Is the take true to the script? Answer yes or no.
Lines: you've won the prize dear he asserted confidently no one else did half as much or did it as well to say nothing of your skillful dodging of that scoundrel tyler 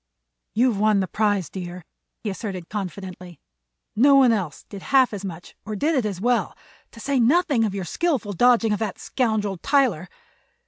yes